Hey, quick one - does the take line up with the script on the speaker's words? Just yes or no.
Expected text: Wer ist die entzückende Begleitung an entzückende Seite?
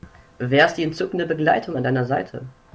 no